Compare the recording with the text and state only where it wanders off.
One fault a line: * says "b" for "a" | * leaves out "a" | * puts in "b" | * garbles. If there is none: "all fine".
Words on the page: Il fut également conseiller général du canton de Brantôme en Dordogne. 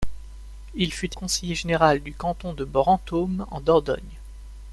* leaves out "également"